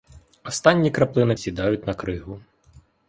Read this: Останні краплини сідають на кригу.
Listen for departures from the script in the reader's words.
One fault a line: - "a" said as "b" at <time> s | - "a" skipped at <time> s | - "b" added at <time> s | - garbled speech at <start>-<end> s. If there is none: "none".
none